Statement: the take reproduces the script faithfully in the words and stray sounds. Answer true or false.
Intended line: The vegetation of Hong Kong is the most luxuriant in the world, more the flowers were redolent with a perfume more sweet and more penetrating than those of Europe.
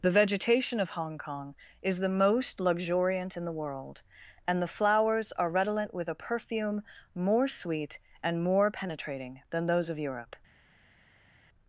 false